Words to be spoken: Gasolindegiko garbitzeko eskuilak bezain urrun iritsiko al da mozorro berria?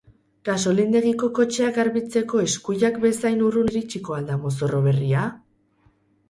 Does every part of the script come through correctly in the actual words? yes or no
no